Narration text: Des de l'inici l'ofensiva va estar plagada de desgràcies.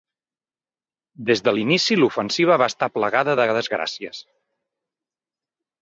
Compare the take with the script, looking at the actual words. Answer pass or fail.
pass